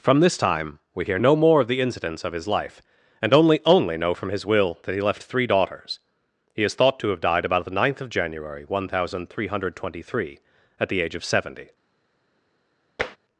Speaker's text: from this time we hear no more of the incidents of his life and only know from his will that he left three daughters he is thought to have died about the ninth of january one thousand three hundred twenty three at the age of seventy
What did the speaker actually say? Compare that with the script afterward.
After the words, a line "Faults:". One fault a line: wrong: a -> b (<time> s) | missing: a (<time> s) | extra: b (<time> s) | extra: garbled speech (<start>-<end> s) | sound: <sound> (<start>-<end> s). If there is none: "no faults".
from this time we hear no more of the incidents of his life and only only know from his will that he left three daughters he is thought to have died about the ninth of january one thousand three hundred twenty three at the age of seventy
Faults:
extra: only (3.7 s)
sound: tap (13.0-13.2 s)